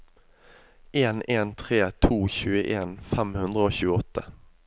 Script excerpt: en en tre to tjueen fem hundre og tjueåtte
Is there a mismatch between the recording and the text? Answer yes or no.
no